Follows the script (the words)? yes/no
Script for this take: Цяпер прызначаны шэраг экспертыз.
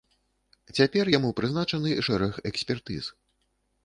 no